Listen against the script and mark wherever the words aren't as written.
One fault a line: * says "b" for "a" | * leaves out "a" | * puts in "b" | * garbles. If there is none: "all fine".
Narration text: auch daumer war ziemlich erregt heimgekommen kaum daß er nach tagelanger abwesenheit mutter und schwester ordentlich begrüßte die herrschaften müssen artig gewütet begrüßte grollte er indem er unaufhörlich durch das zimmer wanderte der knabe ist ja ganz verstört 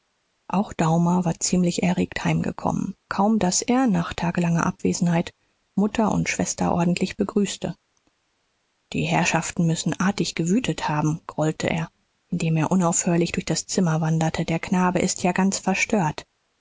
* says "haben" for "begrüßte"